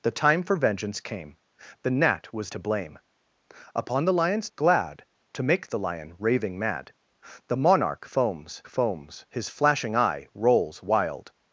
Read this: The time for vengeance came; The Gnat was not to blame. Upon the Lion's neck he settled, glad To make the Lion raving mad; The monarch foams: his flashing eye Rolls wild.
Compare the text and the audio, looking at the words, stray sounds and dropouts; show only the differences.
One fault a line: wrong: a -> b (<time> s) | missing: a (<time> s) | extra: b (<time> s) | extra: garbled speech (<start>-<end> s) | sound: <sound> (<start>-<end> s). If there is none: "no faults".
missing: not (2.5 s)
missing: neck he settled (4.5 s)
extra: foams (8.7 s)